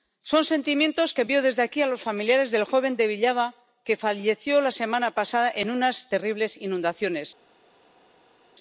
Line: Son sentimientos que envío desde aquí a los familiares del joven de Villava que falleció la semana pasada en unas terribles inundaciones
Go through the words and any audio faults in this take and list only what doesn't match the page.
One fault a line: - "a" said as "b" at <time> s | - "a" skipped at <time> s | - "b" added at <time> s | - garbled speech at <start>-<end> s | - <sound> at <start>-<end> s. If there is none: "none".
none